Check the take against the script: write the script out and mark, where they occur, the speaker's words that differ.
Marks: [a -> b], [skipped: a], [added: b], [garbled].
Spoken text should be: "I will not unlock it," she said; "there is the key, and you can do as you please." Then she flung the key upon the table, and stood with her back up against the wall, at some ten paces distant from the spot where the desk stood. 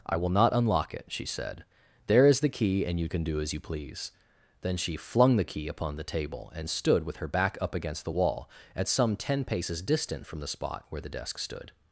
"I will not unlock it," she said; "there is the key, and you can do as you please." Then she flung the key upon the table, and stood with her back up against the wall, at some ten paces distant from the spot where the desk stood.